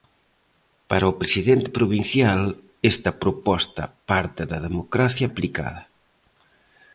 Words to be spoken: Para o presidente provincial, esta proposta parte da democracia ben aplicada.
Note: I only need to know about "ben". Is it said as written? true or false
false